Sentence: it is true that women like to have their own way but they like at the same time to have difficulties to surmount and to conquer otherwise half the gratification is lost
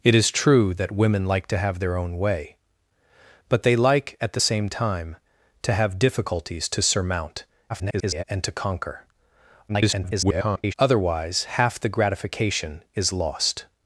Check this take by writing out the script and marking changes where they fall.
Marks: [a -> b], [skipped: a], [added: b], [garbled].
it is true that women like to have their own way but they like at the same time to have difficulties to surmount [garbled] and to conquer [garbled] otherwise half the gratification is lost